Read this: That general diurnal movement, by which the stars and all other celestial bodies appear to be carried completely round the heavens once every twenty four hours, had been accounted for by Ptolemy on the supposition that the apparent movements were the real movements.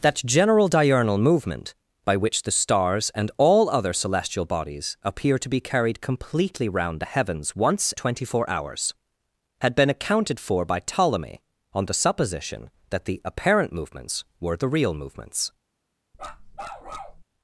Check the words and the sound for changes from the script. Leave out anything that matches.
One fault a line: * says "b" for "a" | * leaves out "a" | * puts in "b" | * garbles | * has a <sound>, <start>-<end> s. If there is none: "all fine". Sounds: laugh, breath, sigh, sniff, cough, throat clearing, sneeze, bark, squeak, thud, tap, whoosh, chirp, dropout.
* leaves out "every"
* has a bark, 16.1-17.2 s